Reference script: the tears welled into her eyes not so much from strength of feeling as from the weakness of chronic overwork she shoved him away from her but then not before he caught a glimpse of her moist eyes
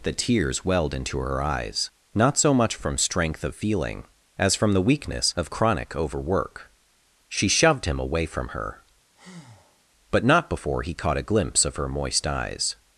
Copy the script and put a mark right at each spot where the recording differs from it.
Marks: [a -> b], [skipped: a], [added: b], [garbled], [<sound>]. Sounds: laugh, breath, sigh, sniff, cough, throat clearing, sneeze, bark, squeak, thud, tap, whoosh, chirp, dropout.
the tears welled into her eyes not so much from strength of feeling as from the weakness of chronic overwork she shoved him away from her [breath] but [skipped: then] not before he caught a glimpse of her moist eyes